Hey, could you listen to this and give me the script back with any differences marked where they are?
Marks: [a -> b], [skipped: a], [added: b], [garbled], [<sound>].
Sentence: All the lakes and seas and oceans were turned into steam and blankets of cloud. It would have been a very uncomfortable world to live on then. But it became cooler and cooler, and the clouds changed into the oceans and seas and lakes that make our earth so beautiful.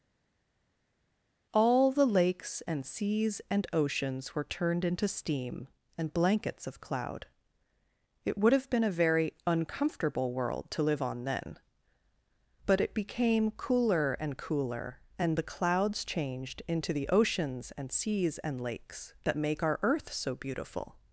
All the lakes and seas and oceans were turned into steam and blankets of cloud. It would have been a very uncomfortable world to live on then. But it became cooler and cooler, and the clouds changed into the oceans and seas and lakes that make our earth so beautiful.